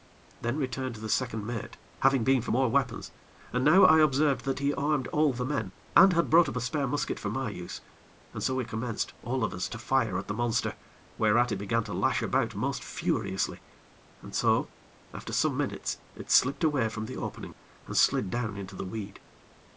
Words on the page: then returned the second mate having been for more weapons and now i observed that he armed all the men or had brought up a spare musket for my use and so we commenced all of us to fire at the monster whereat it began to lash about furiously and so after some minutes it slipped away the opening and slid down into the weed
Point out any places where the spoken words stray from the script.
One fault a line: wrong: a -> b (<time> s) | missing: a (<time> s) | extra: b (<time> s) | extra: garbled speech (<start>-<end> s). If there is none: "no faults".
wrong: or -> and (6.0 s)
extra: most (12.5 s)
extra: from (16.9 s)